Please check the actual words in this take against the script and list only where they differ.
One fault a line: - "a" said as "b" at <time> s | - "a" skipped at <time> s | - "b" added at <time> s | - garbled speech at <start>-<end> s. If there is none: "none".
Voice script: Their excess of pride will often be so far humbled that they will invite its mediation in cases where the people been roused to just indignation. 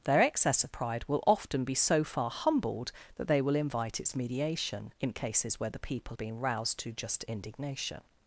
none